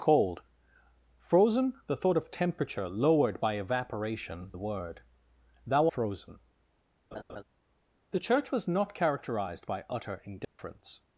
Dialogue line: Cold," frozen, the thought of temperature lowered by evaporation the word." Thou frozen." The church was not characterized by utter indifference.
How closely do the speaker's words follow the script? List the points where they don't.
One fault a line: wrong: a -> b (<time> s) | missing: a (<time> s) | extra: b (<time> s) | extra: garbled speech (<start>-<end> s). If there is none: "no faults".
no faults